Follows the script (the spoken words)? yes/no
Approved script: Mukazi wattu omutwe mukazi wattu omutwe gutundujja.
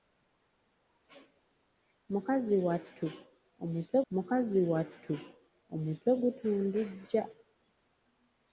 yes